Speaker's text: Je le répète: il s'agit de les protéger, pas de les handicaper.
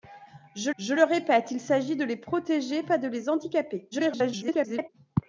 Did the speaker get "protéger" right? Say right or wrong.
right